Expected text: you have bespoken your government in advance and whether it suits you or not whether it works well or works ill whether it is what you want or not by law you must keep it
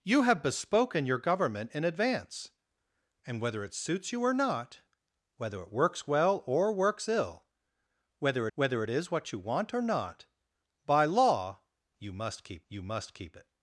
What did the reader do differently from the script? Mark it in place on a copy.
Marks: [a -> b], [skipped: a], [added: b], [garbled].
you have bespoken your government in advance and whether it suits you or not whether it works well or works ill whether [added: whether] it is what you want or not by law you must keep [added: you must keep] it